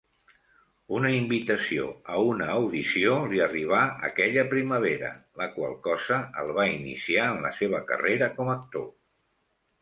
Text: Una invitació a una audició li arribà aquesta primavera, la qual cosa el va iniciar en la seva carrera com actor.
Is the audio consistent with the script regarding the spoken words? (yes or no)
no